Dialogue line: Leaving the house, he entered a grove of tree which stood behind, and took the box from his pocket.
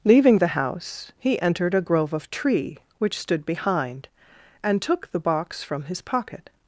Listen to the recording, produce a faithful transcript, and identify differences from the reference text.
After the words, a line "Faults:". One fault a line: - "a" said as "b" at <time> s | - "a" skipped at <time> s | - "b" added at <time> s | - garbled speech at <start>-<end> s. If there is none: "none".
Leaving the house, he entered a grove of tree which stood behind, and took the box from his pocket.
Faults:
none